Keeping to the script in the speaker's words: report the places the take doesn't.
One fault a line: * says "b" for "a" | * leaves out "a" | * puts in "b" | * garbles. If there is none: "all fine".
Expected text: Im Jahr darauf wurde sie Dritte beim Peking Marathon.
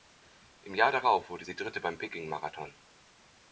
all fine